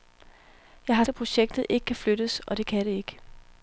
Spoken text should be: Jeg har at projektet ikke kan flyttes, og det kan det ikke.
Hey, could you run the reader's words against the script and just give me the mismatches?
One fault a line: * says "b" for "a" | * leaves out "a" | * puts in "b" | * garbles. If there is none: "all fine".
all fine